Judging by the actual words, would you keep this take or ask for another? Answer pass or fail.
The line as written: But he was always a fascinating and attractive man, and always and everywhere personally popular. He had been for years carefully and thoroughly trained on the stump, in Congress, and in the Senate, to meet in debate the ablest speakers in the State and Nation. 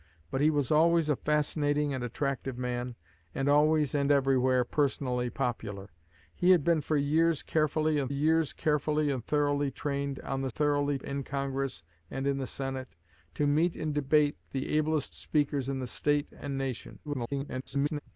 fail